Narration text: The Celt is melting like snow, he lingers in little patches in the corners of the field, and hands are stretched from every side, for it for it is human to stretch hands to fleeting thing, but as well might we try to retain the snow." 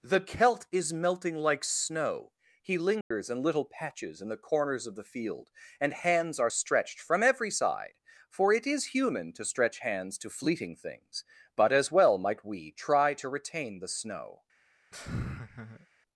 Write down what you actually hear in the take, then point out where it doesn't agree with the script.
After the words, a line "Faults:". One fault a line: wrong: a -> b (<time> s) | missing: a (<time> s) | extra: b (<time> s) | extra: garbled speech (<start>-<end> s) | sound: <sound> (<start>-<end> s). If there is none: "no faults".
The Celt is melting like snow, he lingers in little patches in the corners of the field, and hands are stretched from every side, for it is human to stretch hands to fleeting things, but as well might we try to retain the snow."
Faults:
sound: dropout (3.0-3.1 s)
missing: for it (8.6 s)
wrong: thing -> things (10.8 s)
sound: laugh (14.9-15.9 s)